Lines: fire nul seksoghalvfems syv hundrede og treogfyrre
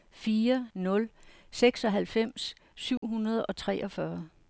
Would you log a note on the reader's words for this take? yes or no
no